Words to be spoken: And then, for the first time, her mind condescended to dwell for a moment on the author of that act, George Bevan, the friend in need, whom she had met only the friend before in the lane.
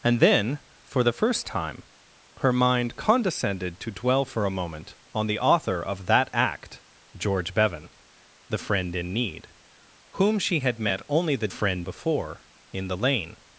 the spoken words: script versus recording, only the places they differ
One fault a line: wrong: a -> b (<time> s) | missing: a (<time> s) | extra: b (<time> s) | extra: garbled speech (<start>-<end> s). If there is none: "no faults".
no faults